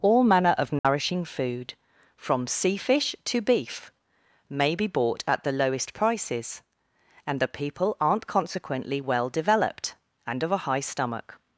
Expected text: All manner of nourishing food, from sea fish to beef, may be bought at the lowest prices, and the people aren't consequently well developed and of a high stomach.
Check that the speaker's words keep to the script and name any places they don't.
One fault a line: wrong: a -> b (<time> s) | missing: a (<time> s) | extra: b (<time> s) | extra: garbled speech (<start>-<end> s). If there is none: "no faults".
no faults